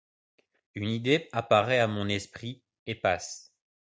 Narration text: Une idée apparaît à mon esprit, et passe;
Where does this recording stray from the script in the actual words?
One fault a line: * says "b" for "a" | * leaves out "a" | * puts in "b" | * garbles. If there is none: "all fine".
all fine